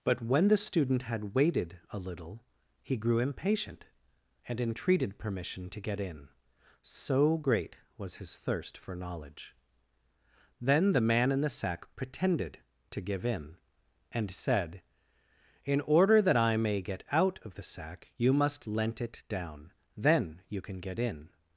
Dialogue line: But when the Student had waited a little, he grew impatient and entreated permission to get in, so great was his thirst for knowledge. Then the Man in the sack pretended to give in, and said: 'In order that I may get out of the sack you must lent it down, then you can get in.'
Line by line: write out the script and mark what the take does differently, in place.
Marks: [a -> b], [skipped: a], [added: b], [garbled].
But when the Student had waited a little, he grew impatient and entreated permission to get in, so great was his thirst for knowledge. Then the Man in the sack pretended to give in, and said: 'In order that I may get out of the sack you must lent it down, then you can get in.'